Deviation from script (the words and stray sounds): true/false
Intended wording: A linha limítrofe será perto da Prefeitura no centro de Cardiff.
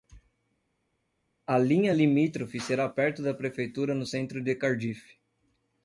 false